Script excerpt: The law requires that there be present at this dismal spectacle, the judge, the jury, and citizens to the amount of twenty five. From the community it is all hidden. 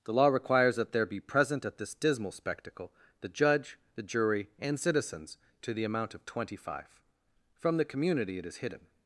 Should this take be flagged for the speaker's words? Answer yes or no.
yes